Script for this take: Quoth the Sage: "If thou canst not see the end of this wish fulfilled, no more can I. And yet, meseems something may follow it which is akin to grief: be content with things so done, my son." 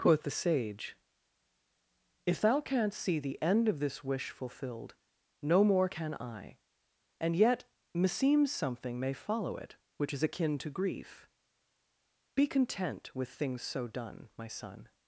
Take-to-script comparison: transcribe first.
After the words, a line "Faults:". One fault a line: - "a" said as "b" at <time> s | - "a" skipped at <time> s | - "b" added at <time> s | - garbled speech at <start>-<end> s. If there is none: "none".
Quoth the Sage: "If thou canst see the end of this wish fulfilled, no more can I. And yet, meseems something may follow it which is akin to grief: be content with things so done, my son."
Faults:
- "not" skipped at 3.0 s